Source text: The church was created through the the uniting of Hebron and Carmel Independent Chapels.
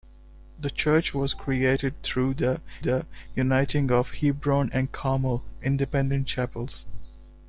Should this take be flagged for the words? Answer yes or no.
no